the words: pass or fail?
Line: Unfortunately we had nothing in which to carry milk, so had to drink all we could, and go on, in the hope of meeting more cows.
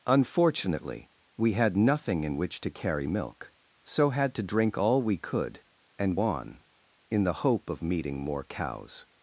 fail